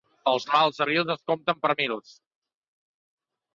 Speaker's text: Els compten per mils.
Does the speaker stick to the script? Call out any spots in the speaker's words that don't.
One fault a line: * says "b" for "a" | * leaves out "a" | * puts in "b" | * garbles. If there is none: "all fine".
* puts in "mals abrils es"